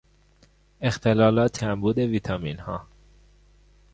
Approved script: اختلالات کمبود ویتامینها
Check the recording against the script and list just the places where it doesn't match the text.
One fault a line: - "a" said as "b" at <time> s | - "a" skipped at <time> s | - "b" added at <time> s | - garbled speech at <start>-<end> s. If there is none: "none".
none